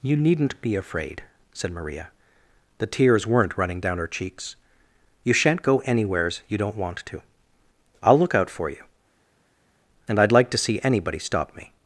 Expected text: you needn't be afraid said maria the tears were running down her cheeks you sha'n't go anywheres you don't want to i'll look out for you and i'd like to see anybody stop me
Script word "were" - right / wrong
wrong